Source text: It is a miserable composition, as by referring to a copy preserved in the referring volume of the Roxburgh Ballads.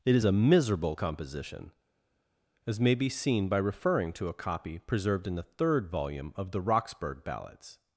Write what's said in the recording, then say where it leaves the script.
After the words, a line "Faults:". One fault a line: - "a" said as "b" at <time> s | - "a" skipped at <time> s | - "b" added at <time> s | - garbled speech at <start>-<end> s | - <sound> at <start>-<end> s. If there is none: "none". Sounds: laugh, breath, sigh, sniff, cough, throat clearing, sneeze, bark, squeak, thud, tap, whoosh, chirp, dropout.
It is a miserable composition, as may be seen by referring to a copy preserved in the third volume of the Roxburgh Ballads.
Faults:
- "may be seen" added at 2.8 s
- "referring" said as "third" at 5.4 s